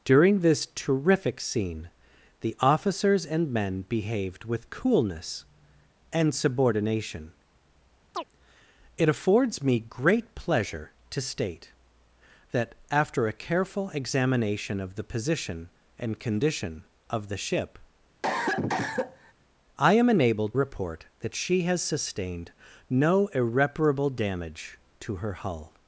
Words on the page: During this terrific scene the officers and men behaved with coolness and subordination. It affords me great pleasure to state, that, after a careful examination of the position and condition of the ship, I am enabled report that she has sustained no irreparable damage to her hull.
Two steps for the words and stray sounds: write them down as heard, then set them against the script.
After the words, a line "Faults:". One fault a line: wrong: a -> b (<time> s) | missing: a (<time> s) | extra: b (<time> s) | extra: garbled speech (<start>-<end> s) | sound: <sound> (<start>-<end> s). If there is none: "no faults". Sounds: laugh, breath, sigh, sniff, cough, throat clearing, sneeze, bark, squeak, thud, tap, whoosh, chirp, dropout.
During this terrific scene the officers and men behaved with coolness and subordination. It affords me great pleasure to state, that, after a careful examination of the position and condition of the ship, I am enabled report that she has sustained no irreparable damage to her hull.
Faults:
sound: chirp (8.1-8.2 s)
sound: cough (18.2-19.3 s)